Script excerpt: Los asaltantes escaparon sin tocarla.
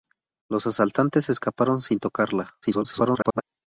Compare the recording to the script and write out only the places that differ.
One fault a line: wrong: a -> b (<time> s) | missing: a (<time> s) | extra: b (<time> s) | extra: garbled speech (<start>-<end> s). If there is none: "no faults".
extra: garbled speech (2.6-3.4 s)